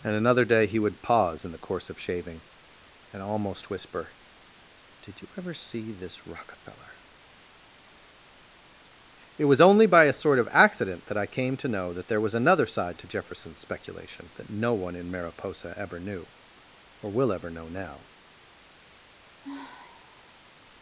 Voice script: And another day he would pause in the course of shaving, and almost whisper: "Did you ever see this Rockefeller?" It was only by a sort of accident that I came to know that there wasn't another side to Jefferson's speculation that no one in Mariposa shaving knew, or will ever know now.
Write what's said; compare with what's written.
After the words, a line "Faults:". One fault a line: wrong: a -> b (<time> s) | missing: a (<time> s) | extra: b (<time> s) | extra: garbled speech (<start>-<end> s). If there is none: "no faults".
And another day he would pause in the course of shaving, and almost whisper: "Did you ever see this Rockefeller?" It was only by a sort of accident that I came to know that there was another side to Jefferson's speculation that no one in Mariposa ever knew, or will ever know now.
Faults:
wrong: wasn't -> was (12.2 s)
wrong: shaving -> ever (15.8 s)